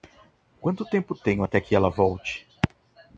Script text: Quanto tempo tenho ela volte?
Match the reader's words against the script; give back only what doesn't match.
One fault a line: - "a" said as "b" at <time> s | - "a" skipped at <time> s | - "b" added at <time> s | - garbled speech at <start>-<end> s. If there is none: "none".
- "até que" added at 1.4 s